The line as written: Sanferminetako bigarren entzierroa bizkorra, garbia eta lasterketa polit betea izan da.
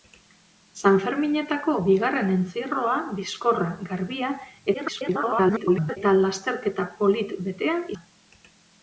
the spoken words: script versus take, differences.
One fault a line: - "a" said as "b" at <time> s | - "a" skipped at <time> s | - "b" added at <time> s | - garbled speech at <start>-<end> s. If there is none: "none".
- garbled speech at 4.7-6.0 s
- "izan" skipped at 7.8 s